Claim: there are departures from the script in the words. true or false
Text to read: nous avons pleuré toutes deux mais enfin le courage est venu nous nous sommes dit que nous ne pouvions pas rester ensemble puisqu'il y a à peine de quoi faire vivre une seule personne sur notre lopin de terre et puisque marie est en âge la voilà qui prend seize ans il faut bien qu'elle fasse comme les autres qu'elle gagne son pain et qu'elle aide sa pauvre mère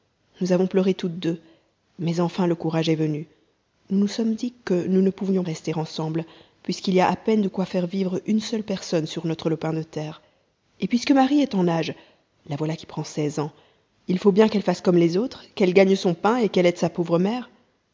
true